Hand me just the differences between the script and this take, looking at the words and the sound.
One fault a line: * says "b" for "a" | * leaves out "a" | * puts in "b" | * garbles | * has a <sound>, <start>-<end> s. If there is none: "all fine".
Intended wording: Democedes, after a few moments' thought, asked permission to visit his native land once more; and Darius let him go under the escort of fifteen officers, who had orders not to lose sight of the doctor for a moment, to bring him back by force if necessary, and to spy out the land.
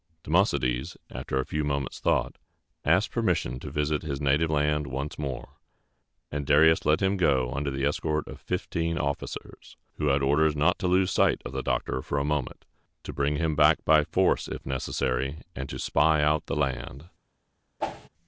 * has a whoosh, 17.8-18.1 s